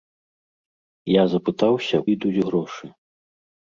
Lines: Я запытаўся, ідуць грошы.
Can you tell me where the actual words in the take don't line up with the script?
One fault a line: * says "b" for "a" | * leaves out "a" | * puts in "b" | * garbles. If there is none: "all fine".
all fine